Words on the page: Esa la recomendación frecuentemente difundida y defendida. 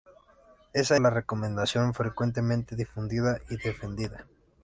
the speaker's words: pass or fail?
pass